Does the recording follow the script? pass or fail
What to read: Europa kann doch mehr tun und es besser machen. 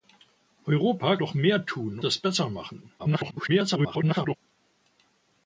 fail